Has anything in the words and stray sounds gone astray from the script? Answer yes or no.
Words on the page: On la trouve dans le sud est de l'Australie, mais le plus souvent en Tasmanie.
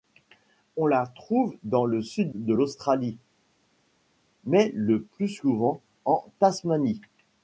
yes